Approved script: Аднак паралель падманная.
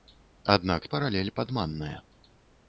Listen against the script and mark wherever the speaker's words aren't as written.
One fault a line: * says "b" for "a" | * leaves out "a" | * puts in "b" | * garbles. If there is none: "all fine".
all fine